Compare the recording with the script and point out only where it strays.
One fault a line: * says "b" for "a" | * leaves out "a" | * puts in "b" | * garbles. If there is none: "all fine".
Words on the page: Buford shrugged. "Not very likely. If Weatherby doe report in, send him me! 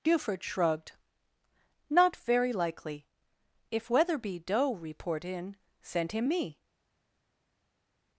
all fine